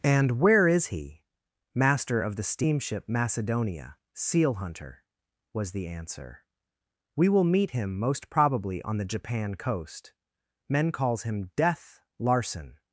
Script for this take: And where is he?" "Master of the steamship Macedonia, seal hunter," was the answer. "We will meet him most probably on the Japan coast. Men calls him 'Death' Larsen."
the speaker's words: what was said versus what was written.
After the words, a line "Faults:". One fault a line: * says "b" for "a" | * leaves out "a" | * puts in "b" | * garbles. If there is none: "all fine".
And where is he?" "Master of the steamship Macedonia, seal hunter," was the answer. "We will meet him most probably on the Japan coast. Men calls him 'Death' Larsen."
Faults:
all fine